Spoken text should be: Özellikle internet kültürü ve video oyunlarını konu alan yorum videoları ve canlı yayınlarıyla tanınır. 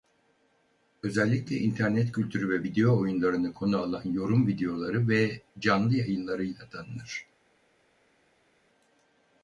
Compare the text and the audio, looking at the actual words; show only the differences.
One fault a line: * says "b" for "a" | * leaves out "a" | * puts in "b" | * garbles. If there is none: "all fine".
all fine